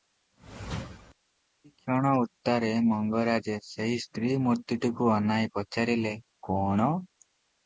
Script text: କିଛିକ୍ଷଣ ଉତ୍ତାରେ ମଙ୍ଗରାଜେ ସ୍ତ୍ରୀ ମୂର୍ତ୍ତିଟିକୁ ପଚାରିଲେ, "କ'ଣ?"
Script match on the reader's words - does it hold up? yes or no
no